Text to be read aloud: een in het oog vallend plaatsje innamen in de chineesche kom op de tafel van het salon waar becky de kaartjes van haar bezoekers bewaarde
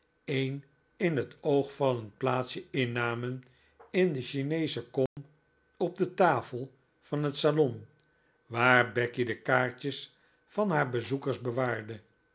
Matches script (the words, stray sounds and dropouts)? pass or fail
fail